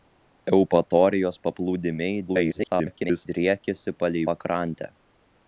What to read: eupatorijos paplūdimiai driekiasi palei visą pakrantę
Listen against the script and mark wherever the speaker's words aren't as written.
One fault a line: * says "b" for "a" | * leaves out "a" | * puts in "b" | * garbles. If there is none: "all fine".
* garbles
* leaves out "visą"